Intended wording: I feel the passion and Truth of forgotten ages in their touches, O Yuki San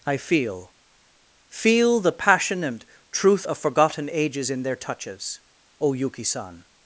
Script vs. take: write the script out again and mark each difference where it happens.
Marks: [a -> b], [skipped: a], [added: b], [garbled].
I feel [added: feel] the passion and Truth of forgotten ages in their touches, O Yuki San